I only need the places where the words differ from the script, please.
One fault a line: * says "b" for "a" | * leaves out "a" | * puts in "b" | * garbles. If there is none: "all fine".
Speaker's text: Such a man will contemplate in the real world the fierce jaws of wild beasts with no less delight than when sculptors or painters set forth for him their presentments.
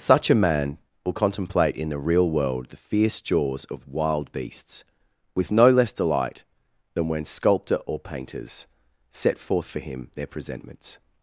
* says "sculptor" for "sculptors"